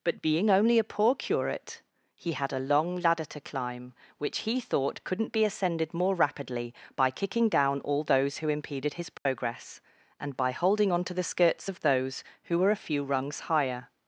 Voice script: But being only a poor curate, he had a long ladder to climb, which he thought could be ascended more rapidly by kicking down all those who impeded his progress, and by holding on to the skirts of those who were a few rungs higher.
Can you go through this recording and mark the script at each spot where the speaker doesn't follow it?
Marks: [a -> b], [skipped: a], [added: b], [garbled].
But being only a poor curate, he had a long ladder to climb, which he thought [could -> couldn't] be ascended more rapidly by kicking down all those who impeded his progress, and by holding on to the skirts of those who were a few rungs higher.